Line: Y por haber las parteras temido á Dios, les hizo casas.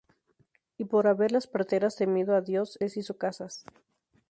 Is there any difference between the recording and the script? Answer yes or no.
no